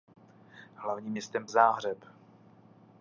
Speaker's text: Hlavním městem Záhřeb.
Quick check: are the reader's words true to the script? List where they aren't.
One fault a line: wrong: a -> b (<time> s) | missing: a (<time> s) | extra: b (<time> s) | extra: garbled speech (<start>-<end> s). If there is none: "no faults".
no faults